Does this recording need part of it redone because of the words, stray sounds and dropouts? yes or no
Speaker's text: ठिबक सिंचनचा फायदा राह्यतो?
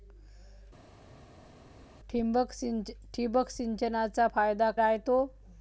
no